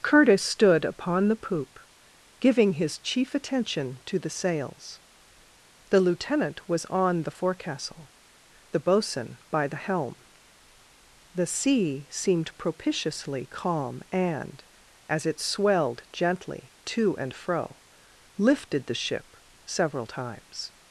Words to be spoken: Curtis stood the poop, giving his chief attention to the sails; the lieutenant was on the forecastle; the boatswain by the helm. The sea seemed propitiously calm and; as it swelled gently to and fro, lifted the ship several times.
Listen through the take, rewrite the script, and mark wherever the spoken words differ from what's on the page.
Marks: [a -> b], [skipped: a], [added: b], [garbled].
Curtis stood [added: upon] the poop, giving his chief attention to the sails; the lieutenant was on the forecastle; the boatswain by the helm. The sea seemed propitiously calm and; as it swelled gently to and fro, lifted the ship several times.